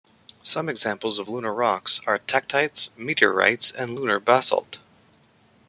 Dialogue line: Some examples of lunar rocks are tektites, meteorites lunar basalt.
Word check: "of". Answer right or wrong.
right